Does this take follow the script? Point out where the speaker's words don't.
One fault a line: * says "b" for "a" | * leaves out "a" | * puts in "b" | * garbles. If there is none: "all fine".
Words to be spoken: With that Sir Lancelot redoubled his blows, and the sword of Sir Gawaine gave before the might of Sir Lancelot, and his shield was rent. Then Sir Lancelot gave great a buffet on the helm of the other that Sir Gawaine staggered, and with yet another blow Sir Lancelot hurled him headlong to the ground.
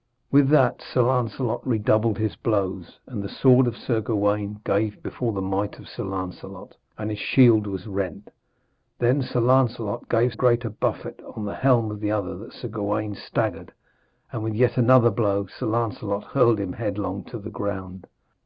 all fine